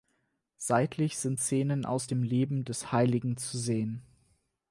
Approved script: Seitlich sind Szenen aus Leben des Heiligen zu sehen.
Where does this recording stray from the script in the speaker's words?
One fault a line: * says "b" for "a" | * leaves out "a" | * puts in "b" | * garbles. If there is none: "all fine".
* puts in "dem"